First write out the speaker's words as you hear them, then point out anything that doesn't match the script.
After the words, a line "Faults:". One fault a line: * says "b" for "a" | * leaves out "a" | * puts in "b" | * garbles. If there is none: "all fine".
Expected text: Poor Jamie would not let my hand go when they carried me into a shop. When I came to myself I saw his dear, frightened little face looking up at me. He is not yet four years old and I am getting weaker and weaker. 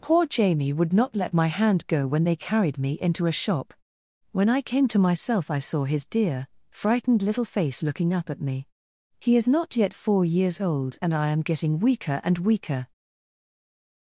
Poor Jamie would not let my hand go when they carried me into a shop. When I came to myself I saw his dear, frightened little face looking up at me. He is not yet four years old and I am getting weaker and weaker.
Faults:
all fine